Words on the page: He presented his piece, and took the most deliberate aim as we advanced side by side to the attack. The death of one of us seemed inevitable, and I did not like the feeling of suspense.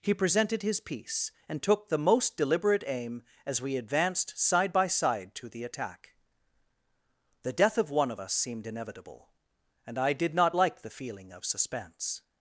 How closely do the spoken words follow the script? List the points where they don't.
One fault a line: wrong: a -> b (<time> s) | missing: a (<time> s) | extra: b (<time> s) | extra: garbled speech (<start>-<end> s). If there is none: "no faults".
no faults